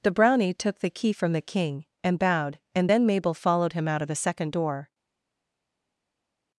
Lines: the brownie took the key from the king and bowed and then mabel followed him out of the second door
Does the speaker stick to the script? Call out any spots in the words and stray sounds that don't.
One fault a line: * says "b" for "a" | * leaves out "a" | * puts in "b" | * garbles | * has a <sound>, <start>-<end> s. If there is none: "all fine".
all fine